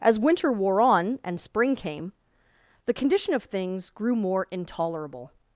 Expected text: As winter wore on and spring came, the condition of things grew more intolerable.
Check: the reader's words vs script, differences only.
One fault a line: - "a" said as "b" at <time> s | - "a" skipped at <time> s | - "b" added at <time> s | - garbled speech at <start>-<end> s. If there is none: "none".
none